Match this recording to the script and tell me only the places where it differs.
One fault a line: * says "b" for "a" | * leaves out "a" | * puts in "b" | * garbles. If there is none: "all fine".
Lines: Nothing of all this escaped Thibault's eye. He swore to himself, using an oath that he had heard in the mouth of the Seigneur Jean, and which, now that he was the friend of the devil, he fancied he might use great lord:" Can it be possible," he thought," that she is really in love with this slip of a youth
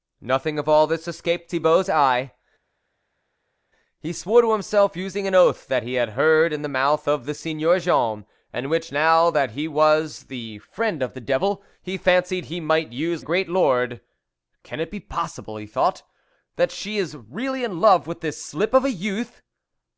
all fine